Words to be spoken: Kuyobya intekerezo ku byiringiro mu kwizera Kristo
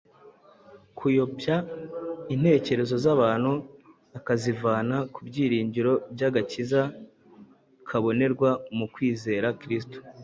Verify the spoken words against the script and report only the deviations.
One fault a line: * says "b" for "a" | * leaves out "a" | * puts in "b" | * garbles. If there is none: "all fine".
* puts in "z'abantu akazivana"
* puts in "by'agakiza kabonerwa"